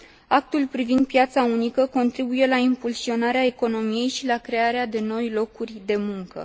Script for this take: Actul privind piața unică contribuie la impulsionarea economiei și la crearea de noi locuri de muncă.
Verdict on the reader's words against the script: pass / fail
pass